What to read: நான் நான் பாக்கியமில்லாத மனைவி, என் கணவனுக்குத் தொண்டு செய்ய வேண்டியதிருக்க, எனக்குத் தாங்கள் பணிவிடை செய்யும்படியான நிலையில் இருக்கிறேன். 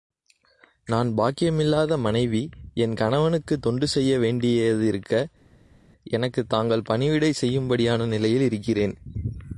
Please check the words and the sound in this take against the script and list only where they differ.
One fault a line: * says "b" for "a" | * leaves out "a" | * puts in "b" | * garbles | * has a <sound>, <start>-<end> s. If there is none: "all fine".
* leaves out "நான்"